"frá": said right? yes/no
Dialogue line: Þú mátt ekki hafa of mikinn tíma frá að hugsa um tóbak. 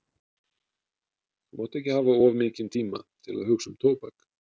no